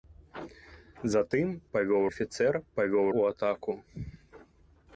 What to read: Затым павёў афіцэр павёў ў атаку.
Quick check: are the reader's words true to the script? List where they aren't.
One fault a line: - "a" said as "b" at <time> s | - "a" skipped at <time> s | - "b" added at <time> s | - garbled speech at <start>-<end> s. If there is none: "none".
none